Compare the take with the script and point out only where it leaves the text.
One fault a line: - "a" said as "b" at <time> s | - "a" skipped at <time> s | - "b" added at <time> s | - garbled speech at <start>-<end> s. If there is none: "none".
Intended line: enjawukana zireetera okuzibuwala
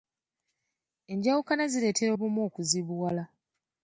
- "obumu" added at 2.1 s